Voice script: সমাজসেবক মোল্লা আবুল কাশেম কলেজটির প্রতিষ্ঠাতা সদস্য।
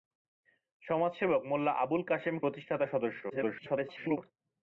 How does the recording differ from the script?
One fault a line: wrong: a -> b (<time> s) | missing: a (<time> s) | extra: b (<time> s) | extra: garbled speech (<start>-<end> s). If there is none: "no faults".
missing: কলেজটির (2.4 s)
extra: garbled speech (3.3-4.2 s)